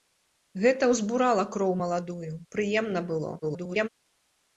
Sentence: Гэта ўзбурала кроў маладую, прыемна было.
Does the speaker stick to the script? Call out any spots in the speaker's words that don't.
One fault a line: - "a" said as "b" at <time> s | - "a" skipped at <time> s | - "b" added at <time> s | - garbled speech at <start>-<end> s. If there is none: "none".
- garbled speech at 3.4-3.9 s